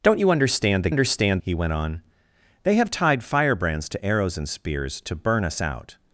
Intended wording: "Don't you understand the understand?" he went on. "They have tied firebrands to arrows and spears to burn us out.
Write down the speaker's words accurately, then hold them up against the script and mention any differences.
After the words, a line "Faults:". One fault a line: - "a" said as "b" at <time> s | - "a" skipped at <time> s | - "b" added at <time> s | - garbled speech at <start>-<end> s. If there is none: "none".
"Don't you understand the understand?" he went on. "They have tied firebrands to arrows and spears to burn us out.
Faults:
none